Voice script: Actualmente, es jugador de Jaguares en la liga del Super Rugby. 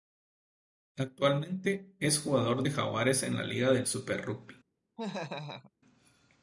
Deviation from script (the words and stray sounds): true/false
true